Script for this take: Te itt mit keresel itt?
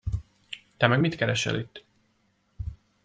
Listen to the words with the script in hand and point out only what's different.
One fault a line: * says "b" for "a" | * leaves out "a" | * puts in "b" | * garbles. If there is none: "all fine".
* says "meg" for "itt"